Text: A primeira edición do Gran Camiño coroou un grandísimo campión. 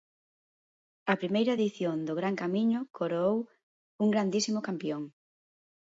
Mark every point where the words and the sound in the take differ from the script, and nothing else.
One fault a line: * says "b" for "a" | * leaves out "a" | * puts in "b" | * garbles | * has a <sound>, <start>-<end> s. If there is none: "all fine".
all fine